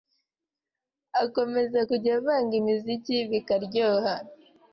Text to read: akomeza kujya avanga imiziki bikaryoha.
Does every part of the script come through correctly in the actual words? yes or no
yes